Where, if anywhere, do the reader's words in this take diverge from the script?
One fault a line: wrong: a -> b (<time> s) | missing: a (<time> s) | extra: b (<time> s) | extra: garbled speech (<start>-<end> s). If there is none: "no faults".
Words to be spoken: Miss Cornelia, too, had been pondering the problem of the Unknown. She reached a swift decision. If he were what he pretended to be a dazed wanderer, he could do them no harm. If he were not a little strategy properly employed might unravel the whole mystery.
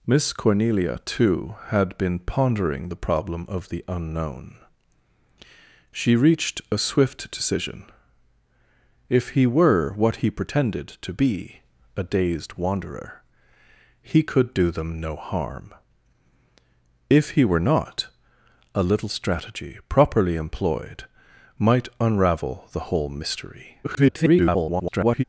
extra: garbled speech (23.8-25.2 s)